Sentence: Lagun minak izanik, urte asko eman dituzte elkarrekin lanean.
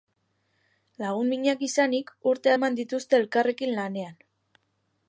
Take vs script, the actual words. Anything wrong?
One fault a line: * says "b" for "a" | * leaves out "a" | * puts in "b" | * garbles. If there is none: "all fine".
* leaves out "asko"